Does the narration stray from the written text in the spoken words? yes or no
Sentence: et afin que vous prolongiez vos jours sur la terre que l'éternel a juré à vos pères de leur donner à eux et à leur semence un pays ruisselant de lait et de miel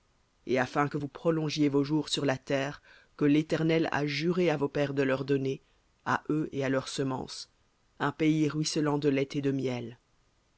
no